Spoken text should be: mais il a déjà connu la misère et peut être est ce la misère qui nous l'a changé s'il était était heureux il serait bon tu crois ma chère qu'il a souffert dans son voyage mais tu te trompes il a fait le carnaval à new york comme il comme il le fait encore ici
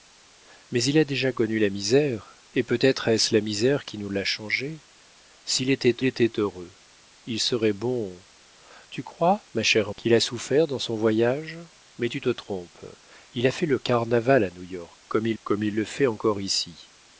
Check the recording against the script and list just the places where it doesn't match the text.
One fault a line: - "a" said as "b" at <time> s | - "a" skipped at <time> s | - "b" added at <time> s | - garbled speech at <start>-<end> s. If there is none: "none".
none